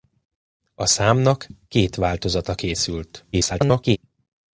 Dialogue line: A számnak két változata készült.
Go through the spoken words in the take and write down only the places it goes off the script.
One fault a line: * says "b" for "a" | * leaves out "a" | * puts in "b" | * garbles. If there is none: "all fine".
* garbles